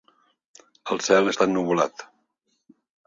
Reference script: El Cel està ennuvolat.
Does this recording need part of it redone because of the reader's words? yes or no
no